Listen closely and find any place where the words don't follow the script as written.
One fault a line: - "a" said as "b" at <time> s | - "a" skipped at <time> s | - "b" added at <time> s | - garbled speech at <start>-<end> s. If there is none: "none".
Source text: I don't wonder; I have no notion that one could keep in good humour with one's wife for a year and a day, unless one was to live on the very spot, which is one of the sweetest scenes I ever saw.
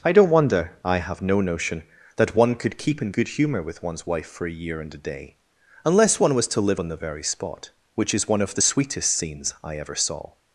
none